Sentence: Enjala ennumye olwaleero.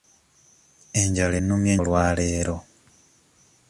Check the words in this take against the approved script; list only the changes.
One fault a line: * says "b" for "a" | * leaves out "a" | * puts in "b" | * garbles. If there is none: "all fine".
all fine